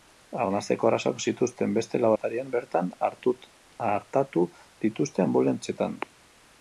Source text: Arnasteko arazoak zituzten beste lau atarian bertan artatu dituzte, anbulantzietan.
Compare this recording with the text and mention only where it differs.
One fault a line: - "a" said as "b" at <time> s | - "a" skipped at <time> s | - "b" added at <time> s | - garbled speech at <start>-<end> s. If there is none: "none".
none